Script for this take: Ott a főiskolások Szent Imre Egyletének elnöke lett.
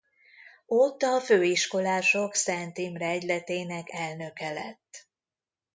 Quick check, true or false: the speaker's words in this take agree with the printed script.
true